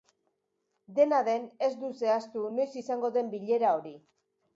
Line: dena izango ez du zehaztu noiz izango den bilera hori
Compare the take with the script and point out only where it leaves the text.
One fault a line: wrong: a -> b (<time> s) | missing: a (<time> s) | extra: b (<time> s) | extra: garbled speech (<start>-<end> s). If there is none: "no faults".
wrong: izango -> den (1.3 s)